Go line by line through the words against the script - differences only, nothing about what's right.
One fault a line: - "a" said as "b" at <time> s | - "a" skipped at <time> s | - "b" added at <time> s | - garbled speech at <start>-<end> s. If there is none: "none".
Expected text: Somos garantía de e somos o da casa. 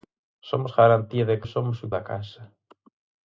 none